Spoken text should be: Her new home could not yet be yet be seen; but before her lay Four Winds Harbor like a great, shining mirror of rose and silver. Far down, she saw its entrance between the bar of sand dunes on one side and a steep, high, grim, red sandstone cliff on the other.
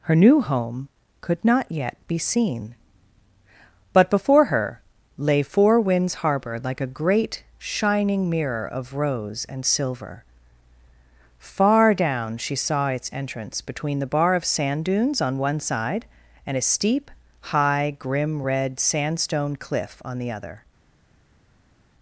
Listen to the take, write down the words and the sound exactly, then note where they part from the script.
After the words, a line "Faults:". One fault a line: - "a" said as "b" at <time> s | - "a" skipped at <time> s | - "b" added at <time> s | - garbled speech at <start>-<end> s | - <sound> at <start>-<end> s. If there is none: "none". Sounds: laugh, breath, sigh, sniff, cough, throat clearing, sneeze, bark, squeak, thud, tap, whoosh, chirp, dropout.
Her new home could not yet be seen; but before her lay Four Winds Harbor like a great, shining mirror of rose and silver. Far down, she saw its entrance between the bar of sand dunes on one side and a steep, high, grim, red sandstone cliff on the other.
Faults:
- "yet be" skipped at 2.2 s